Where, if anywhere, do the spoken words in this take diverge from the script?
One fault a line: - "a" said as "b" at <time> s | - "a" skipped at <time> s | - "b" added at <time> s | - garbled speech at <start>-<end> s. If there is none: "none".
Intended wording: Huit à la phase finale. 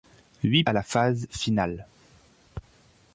none